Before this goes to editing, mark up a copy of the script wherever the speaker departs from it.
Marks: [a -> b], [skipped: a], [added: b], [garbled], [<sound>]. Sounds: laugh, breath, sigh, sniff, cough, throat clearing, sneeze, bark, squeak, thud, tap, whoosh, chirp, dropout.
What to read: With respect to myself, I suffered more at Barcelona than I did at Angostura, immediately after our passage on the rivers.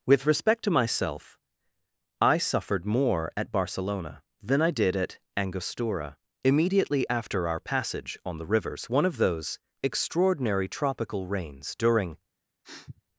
With respect to myself, I suffered more at Barcelona than I did at Angostura, immediately after our passage on the rivers. [added: One of those extraordinary tropical rains during] [sniff]